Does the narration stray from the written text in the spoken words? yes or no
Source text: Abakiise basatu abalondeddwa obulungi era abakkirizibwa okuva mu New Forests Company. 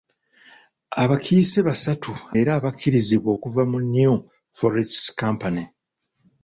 yes